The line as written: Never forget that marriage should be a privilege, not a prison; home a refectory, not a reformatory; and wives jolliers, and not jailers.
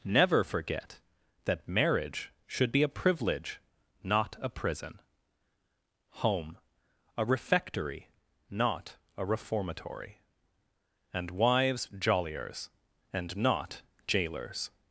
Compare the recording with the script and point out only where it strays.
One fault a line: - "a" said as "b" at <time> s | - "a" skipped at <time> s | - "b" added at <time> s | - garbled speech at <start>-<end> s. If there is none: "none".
none